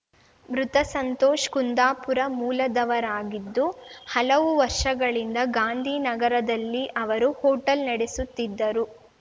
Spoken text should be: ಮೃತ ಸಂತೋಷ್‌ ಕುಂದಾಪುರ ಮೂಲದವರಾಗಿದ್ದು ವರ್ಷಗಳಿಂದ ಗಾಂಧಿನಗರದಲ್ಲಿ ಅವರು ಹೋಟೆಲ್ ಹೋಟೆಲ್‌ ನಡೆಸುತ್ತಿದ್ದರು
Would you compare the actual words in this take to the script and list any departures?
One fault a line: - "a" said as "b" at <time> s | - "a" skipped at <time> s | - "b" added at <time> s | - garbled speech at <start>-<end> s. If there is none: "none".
- "ಹಲವು" added at 4.1 s
- "ಹೋಟೆಲ್" skipped at 7.9 s